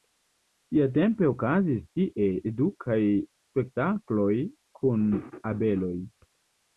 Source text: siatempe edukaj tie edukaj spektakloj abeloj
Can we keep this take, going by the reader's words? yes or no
no